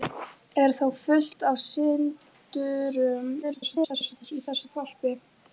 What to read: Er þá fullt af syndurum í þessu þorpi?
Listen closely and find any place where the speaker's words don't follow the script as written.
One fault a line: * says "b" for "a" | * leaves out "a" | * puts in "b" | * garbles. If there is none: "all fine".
* garbles